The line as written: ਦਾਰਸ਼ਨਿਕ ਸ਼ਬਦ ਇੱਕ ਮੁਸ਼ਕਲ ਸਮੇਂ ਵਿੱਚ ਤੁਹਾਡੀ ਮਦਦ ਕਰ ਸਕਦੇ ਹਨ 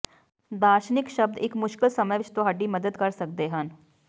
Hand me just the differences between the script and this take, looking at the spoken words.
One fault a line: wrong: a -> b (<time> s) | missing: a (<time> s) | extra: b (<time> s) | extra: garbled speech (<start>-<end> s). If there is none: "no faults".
no faults